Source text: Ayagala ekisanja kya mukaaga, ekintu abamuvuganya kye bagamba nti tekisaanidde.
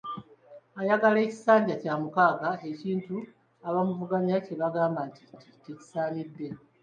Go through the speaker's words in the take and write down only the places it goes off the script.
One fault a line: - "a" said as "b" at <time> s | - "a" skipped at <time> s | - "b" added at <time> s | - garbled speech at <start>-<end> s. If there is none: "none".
- "nti" added at 5.3 s